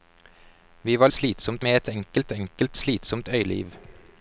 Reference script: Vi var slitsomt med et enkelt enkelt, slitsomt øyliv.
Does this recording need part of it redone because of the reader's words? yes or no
no